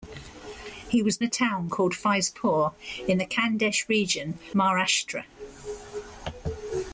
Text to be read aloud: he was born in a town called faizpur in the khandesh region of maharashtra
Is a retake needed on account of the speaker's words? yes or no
yes